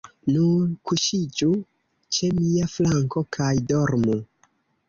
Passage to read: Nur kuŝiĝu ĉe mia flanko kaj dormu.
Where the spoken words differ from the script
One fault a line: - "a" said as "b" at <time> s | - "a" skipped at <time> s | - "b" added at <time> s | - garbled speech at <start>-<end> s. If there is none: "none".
none